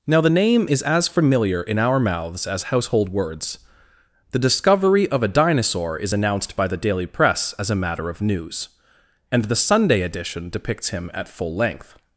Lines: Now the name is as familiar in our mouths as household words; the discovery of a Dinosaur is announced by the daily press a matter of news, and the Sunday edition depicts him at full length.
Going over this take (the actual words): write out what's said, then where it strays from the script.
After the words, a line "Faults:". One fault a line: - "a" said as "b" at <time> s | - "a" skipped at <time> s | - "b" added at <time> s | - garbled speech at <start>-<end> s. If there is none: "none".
Now the name is as familiar in our mouths as household words; the discovery of a Dinosaur is announced by the daily press as a matter of news, and the Sunday edition depicts him at full length.
Faults:
- "as" added at 7.6 s